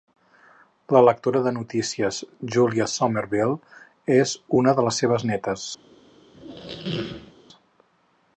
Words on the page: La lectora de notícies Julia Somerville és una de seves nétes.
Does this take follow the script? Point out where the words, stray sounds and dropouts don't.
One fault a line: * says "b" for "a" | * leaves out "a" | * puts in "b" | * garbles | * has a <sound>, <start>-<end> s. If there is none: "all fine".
* puts in "les"
* has a squeak, 6.3-7.3 s